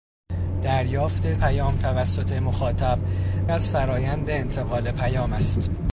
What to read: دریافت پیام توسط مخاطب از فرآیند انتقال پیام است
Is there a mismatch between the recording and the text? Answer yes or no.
no